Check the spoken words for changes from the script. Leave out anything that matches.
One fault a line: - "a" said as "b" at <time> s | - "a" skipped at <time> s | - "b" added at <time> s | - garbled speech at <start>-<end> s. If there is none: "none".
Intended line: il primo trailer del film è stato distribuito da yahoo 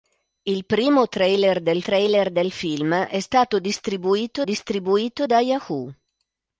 - "trailer del" added at 1.8 s
- "distribuito" added at 4.4 s